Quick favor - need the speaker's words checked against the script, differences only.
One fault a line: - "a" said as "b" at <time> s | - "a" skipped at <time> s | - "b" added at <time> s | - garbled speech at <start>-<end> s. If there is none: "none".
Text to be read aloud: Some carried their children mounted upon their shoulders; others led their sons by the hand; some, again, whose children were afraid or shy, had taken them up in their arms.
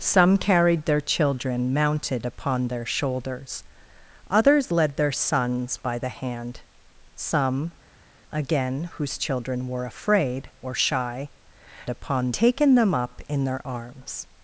- "had" said as "upon" at 11.9 s